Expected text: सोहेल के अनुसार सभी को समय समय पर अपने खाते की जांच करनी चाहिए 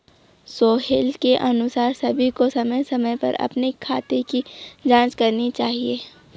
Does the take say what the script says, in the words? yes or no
yes